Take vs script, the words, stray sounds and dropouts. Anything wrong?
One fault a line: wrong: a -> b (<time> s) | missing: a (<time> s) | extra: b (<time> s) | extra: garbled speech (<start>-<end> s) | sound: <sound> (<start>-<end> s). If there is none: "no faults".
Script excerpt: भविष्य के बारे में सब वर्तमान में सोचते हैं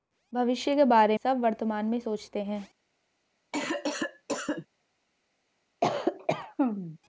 missing: में (1.2 s)
sound: cough (3.5-4.7 s)
sound: cough (5.8-7.0 s)